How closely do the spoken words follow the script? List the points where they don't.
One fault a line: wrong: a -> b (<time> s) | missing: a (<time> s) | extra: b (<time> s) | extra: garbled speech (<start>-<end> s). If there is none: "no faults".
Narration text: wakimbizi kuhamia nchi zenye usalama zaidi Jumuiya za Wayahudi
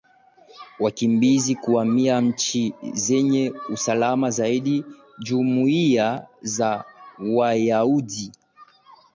no faults